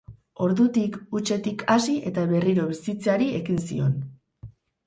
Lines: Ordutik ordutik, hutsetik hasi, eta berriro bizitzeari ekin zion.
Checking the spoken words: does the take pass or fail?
fail